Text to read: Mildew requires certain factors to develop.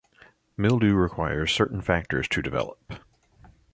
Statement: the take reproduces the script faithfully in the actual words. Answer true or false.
true